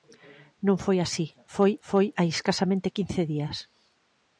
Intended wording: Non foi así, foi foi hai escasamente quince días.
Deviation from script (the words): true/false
false